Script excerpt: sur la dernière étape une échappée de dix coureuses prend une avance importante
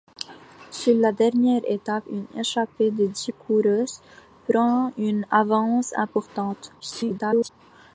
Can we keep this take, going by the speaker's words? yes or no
no